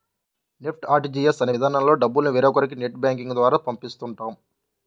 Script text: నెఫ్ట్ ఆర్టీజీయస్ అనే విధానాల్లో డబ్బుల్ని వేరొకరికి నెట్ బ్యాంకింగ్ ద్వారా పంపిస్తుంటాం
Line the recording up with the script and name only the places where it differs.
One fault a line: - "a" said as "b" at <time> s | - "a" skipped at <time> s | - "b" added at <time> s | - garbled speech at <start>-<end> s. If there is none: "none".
none